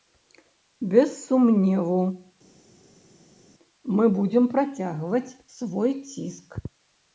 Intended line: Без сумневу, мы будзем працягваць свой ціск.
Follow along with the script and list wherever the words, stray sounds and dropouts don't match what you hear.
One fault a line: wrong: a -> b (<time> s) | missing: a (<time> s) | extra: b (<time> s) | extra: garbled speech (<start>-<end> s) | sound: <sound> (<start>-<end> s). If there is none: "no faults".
no faults